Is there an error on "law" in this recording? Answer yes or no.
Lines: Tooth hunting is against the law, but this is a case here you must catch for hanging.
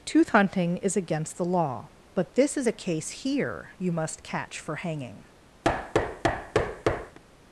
no